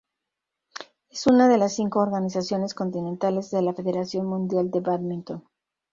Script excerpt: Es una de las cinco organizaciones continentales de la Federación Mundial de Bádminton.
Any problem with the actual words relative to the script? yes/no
no